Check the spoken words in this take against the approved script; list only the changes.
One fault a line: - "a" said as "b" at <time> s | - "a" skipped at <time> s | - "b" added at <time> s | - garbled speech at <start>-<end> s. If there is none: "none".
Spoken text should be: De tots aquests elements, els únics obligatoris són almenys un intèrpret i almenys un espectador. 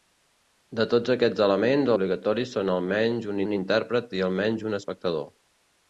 - "els únics" skipped at 1.9 s
- "un" added at 3.5 s